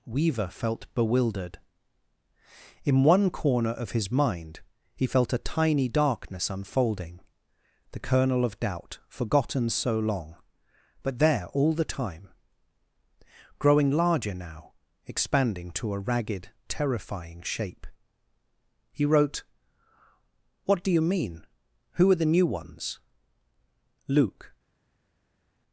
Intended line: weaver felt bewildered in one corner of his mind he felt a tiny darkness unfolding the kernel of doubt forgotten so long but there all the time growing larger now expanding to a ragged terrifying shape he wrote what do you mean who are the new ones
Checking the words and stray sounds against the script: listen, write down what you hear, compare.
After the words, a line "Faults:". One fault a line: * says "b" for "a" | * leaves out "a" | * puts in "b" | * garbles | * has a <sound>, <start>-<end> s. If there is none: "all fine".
weaver felt bewildered in one corner of his mind he felt a tiny darkness unfolding the kernel of doubt forgotten so long but there all the time growing larger now expanding to a ragged terrifying shape he wrote what do you mean who are the new ones luke
Faults:
* puts in "luke"